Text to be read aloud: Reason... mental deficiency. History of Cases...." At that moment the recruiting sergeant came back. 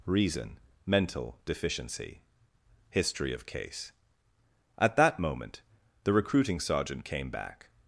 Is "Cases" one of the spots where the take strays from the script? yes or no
yes